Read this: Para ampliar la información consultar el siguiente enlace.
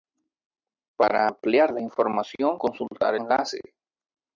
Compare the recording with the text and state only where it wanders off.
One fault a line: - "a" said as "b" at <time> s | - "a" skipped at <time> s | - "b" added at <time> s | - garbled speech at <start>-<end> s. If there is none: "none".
- "el siguiente" skipped at 3.2 s